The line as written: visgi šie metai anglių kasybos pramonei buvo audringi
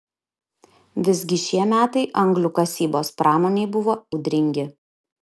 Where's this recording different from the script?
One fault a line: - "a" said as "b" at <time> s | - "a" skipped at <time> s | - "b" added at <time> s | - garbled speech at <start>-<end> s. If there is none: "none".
none